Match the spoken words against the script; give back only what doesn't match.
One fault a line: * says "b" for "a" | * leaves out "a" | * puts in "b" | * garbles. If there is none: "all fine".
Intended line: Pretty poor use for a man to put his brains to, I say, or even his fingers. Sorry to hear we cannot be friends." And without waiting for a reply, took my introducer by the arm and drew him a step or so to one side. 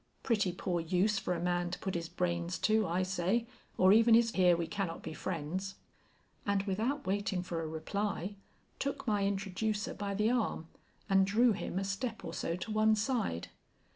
* leaves out "fingers Sorry to"